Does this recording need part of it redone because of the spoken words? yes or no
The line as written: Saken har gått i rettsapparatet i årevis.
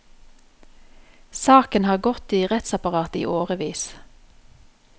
no